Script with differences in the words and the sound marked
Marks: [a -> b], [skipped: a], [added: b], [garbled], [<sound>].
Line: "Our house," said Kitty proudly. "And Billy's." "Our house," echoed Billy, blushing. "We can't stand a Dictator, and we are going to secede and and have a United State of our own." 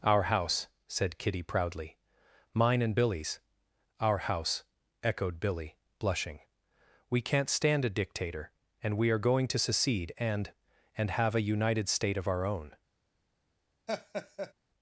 "Our house," said Kitty proudly. [added: Mine] "And Billy's." "Our house," echoed Billy, blushing. "We can't stand a Dictator, and we are going to secede and and have a United State of our own." [laugh]